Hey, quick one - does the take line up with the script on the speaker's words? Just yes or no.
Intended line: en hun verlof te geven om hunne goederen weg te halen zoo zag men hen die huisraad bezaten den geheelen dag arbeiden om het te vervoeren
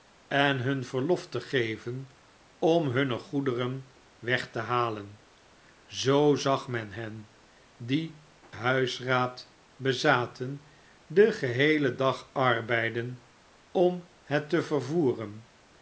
yes